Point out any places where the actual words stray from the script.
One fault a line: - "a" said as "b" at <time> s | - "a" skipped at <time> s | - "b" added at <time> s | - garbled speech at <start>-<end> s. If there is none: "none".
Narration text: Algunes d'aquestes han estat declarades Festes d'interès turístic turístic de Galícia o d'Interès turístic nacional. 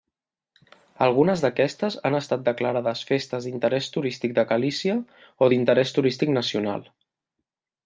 - "turístic" skipped at 4.3 s